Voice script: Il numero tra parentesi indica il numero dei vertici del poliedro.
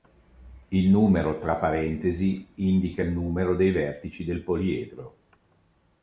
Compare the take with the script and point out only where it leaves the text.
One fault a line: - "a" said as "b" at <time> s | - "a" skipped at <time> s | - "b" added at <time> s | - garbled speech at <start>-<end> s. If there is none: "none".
none